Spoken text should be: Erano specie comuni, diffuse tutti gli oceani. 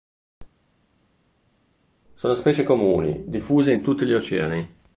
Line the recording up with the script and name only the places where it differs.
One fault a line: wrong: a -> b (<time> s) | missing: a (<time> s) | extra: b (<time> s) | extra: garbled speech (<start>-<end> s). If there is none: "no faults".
wrong: Erano -> Sono (2.1 s)
extra: in (3.7 s)